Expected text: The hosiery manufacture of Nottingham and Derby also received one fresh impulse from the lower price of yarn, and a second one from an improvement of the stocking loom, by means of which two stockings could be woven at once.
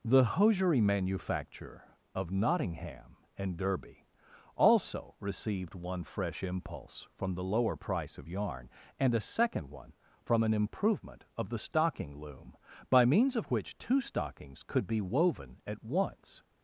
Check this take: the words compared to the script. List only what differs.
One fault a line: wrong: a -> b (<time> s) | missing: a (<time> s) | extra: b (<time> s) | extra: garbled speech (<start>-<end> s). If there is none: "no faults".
no faults